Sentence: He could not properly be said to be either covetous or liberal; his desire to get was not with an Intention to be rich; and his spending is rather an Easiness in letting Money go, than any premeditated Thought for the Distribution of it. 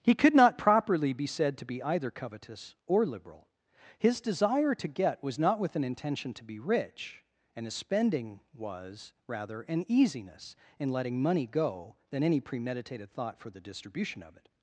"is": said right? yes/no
no